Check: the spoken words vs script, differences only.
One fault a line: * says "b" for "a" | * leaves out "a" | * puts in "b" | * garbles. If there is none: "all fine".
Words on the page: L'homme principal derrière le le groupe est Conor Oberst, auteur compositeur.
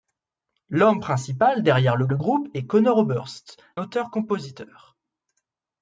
all fine